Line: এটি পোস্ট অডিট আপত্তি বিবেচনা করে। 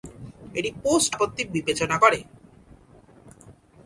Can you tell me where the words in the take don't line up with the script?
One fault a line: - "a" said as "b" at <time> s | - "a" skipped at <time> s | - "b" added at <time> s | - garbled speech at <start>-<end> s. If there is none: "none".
- "অডিট" skipped at 1.1 s